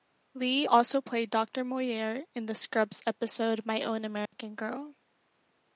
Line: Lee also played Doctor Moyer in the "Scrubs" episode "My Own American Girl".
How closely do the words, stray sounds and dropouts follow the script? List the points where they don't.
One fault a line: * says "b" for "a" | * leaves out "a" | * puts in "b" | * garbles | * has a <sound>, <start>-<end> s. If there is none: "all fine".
* has a dropout, 4.3-4.3 s